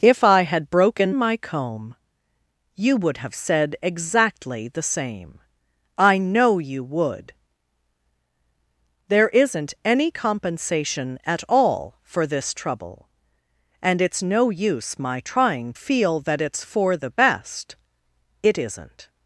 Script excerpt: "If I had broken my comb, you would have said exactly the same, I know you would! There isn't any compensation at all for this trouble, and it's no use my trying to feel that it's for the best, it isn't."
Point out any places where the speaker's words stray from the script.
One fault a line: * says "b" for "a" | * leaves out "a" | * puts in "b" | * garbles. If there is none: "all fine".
* leaves out "to"